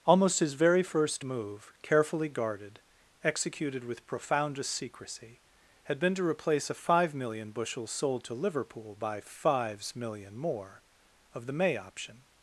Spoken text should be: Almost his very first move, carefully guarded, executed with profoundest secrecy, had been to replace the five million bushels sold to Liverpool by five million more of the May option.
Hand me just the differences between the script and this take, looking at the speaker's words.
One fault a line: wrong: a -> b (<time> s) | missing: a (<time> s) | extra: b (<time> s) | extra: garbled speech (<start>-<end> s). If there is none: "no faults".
wrong: the -> a (6.7 s)
wrong: five -> fives (9.2 s)